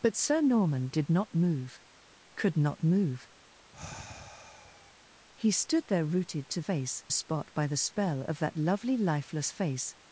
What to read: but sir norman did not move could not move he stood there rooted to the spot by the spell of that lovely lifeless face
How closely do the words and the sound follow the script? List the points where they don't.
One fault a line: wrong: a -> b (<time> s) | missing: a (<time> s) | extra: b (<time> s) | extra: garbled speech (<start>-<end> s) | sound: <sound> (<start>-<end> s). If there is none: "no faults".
sound: sigh (3.7-5.0 s)
wrong: the -> face (6.6 s)